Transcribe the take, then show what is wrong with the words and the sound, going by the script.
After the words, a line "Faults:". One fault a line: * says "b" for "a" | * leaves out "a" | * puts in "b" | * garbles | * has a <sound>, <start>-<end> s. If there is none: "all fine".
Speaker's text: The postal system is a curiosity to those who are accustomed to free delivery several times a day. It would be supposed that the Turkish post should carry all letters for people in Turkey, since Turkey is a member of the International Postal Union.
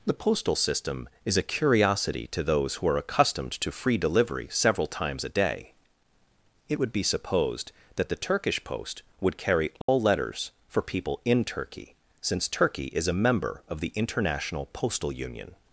The postal system is a curiosity to those who are accustomed to free delivery several times a day. It would be supposed that the Turkish post would carry all letters for people in Turkey, since Turkey is a member of the International Postal Union.
Faults:
* says "would" for "should"
* has a dropout, 9.8-9.9 s